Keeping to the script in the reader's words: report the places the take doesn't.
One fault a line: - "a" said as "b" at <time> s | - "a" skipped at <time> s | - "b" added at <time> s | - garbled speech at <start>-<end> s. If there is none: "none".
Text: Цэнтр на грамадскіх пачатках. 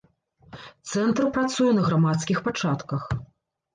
- "працуе" added at 1.4 s